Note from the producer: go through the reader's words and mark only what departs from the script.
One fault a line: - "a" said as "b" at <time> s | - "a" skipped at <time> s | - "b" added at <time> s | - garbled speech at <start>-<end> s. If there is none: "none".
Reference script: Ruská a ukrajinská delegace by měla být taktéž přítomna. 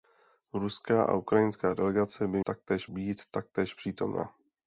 - "měla" said as "taktéž" at 2.4 s